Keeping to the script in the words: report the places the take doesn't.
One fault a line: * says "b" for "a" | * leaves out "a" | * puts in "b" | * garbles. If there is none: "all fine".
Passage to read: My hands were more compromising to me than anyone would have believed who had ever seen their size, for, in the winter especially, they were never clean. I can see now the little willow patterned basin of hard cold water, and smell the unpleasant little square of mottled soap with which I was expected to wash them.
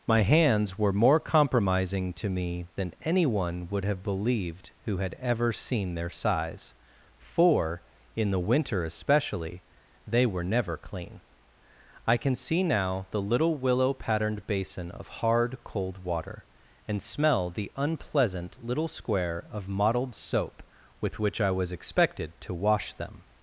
all fine